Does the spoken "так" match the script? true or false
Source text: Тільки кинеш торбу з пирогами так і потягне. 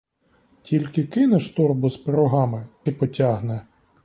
false